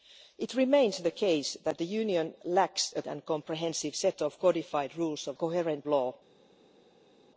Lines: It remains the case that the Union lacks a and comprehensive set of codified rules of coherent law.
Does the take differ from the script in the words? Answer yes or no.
no